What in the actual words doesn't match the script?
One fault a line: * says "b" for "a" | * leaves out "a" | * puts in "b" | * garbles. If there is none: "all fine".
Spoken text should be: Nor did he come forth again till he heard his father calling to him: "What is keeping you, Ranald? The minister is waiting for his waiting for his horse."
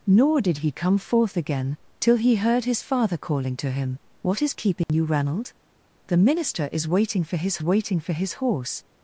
all fine